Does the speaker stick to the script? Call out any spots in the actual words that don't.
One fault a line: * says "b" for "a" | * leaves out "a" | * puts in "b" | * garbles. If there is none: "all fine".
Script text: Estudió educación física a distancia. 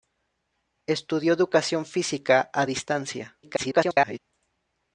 * garbles